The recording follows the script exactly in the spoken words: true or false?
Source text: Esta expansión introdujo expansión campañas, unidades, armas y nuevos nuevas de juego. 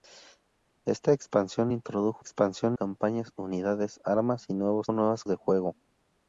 true